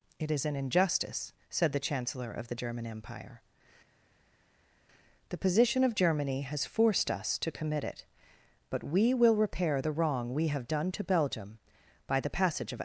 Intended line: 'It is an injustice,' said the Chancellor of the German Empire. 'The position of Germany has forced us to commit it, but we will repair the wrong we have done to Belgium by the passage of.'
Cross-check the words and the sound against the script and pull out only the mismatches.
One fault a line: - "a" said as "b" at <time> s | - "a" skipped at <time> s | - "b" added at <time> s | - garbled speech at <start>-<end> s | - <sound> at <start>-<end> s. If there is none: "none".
none